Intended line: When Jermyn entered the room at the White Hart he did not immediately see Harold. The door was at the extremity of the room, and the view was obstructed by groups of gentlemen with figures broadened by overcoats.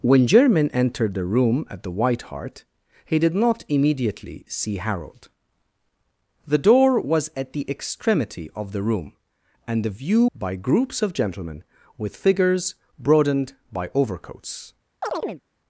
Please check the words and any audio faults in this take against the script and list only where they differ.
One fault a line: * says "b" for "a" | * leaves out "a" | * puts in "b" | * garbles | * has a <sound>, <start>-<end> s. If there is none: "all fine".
* leaves out "was obstructed"
* has a chirp, 15.0-15.4 s